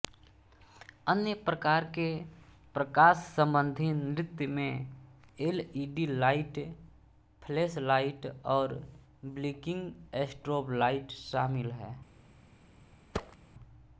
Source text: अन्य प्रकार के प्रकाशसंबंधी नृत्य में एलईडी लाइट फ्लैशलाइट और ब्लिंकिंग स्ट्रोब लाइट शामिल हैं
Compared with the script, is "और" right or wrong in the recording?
right